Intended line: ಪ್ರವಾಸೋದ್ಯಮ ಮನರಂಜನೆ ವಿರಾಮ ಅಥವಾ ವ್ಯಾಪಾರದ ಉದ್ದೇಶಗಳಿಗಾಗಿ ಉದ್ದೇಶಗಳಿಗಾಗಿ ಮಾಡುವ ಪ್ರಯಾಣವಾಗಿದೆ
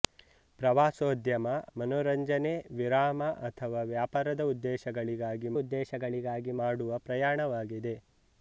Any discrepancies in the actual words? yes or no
no